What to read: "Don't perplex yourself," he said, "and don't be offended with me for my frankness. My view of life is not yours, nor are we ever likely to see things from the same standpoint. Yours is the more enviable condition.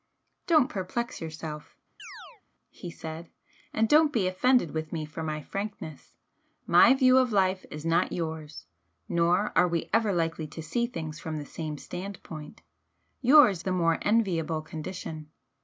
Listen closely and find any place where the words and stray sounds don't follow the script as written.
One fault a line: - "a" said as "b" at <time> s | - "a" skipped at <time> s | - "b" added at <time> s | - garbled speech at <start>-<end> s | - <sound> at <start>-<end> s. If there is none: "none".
- chirp at 2.0-2.4 s
- "is" skipped at 13.6 s